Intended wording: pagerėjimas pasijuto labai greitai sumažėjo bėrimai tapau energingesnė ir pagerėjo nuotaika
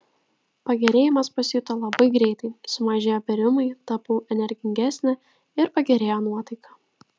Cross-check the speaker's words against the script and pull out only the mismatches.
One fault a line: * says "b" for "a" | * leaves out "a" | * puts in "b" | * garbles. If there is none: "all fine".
all fine